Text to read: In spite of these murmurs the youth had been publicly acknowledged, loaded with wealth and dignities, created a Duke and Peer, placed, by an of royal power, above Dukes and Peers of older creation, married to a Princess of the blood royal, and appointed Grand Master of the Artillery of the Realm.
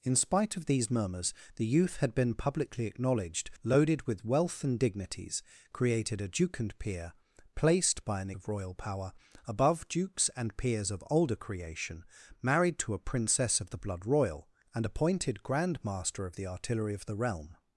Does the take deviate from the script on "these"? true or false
false